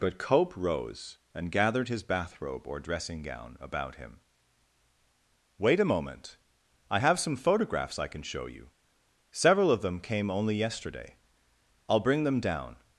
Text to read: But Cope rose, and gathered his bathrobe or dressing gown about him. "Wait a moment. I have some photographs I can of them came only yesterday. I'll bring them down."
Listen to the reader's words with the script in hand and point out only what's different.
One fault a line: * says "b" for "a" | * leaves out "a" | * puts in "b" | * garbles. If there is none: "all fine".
* puts in "show you several"